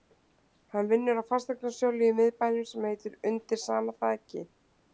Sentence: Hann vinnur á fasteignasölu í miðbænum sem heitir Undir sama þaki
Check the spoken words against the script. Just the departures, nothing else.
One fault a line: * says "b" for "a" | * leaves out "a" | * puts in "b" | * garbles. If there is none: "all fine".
all fine